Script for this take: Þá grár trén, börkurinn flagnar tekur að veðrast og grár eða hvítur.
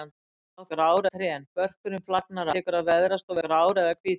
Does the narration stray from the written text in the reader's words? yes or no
no